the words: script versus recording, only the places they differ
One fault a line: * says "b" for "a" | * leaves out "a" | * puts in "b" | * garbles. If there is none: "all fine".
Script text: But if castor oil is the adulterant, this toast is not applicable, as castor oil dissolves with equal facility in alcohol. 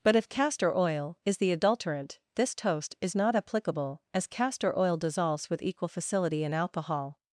all fine